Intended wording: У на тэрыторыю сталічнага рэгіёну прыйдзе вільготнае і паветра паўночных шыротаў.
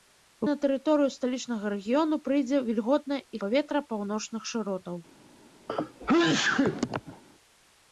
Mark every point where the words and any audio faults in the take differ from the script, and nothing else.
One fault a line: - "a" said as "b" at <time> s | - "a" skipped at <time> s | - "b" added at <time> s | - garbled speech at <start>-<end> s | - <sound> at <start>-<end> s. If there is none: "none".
- sneeze at 5.7-7.2 s